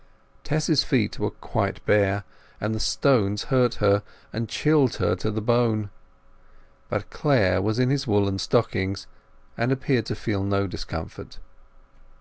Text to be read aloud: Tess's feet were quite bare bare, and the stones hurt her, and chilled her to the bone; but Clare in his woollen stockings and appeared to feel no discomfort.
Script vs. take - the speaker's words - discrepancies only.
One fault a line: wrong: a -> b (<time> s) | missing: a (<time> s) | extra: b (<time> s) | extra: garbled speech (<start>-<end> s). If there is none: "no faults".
missing: bare (2.2 s)
extra: was (7.6 s)